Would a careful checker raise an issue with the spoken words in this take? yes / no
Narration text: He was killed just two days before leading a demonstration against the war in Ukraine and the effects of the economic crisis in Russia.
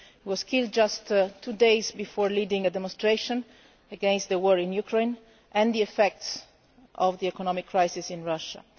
no